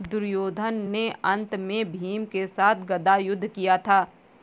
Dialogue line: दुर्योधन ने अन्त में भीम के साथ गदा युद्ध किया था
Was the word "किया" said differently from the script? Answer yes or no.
no